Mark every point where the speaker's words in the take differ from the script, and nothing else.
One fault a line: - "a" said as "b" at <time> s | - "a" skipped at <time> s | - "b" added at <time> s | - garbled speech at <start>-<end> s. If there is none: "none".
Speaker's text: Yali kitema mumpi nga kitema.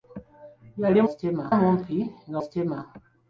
none